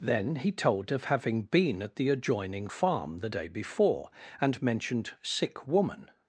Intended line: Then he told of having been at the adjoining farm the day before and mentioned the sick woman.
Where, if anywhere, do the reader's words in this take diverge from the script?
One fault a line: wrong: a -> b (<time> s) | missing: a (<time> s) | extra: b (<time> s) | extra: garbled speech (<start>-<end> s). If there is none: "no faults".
missing: the (5.1 s)